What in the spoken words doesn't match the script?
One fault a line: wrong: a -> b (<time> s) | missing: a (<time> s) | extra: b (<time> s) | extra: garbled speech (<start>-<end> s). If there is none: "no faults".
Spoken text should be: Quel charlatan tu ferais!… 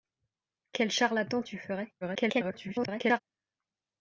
extra: garbled speech (2.0-3.2 s)